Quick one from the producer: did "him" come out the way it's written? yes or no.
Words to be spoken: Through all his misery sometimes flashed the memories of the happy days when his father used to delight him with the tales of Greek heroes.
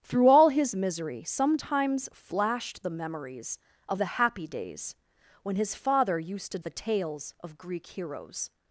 no